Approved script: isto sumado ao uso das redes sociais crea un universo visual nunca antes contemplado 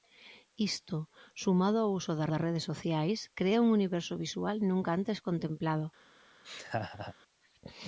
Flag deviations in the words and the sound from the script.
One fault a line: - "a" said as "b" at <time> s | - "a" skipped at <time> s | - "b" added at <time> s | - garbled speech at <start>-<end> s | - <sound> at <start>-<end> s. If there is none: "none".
- "das" added at 2.3 s
- laugh at 6.4-7.1 s